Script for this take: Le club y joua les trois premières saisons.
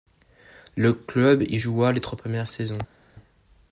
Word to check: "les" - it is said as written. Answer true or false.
true